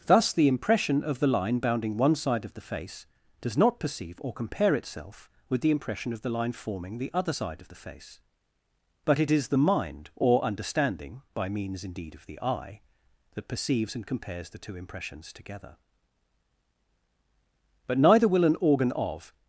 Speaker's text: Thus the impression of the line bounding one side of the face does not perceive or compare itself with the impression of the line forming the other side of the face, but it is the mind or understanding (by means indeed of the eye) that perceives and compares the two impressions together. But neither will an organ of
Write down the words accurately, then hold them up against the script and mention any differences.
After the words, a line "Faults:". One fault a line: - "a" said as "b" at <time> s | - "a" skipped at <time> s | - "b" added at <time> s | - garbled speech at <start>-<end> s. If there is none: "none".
Thus the impression of the line bounding one side of the face does not perceive or compare itself with the impression of the line forming the other side of the face, but it is the mind or understanding (by means indeed of the eye) that perceives and compares the two impressions together. But neither will an organ of
Faults:
none